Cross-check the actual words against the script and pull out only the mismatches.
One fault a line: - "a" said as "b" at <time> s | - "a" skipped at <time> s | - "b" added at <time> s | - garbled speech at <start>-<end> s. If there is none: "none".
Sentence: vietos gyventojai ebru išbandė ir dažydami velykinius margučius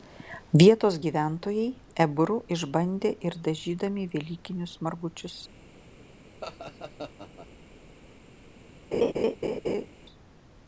none